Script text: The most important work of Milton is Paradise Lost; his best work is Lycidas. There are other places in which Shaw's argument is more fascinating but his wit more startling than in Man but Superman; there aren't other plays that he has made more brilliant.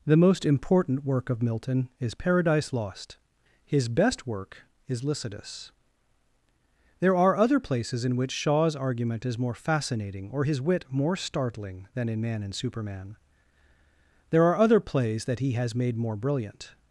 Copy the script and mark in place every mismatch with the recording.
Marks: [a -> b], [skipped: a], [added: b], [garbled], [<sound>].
The most important work of Milton is Paradise Lost; his best work is Lycidas. There are other places in which Shaw's argument is more fascinating [but -> or] his wit more startling than in Man [but -> and] Superman; there [aren't -> are] other plays that he has made more brilliant.